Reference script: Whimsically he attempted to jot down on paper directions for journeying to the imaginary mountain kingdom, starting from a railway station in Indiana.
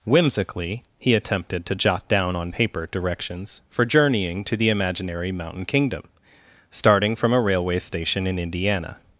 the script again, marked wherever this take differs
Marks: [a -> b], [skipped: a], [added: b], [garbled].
Whimsically he attempted to jot down on paper directions for journeying to the imaginary mountain kingdom, starting from a railway station in Indiana.